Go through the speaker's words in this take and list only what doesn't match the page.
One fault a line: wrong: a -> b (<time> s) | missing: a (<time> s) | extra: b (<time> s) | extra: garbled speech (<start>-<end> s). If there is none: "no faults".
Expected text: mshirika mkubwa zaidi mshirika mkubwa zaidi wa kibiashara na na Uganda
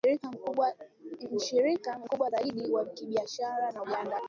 missing: mshirika mkubwa zaidi (2.7 s)
missing: na (3.8 s)